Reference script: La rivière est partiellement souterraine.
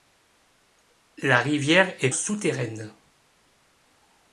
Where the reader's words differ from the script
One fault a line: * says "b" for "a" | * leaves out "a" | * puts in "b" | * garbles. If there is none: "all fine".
* leaves out "partiellement"